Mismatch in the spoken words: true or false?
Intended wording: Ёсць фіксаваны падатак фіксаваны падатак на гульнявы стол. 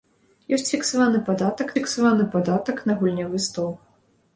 false